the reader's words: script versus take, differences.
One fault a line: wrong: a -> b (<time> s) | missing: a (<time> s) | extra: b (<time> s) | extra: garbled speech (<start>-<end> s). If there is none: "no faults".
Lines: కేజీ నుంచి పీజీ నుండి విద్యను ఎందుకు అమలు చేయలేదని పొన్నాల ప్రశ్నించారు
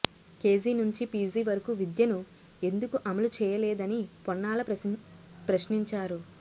wrong: నుండి -> వరకు (1.5 s)